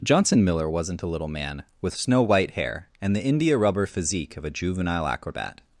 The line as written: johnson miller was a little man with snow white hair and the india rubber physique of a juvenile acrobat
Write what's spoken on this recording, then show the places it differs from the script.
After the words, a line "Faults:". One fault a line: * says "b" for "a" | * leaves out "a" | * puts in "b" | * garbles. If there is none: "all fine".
johnson miller wasn't a little man with snow white hair and the india rubber physique of a juvenile acrobat
Faults:
* says "wasn't" for "was"